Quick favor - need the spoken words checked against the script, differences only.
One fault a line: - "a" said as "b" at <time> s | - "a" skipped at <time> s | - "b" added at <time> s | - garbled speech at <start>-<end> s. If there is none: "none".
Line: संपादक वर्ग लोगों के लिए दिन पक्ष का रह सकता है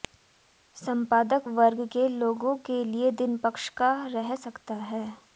- "के" added at 1.9 s